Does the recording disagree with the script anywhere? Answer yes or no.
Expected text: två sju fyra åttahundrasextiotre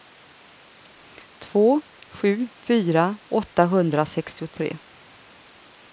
no